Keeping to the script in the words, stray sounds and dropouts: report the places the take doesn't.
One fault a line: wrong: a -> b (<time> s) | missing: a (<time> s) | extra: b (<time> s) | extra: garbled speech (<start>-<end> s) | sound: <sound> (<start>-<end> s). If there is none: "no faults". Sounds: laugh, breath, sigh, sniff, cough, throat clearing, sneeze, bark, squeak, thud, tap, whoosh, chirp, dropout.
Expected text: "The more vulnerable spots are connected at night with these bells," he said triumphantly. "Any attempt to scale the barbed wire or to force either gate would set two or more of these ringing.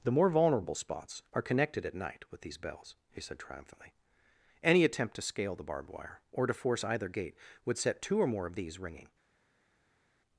no faults